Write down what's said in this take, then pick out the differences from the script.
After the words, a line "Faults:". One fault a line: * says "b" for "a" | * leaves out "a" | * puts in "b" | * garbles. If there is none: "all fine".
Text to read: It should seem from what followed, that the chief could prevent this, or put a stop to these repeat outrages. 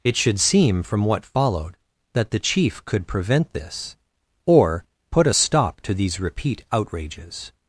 It should seem from what followed, that the chief could prevent this, or put a stop to these repeat outrages.
Faults:
all fine